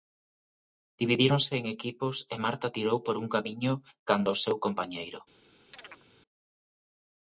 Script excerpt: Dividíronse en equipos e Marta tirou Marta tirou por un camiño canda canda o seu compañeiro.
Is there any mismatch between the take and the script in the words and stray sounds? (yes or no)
yes